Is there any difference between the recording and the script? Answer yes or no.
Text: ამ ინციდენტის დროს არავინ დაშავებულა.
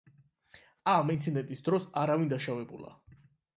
no